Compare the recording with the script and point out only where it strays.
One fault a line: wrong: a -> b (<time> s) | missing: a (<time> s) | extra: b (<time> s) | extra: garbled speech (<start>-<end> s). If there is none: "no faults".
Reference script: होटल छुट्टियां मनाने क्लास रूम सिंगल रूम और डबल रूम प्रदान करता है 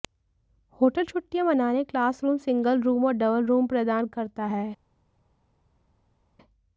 no faults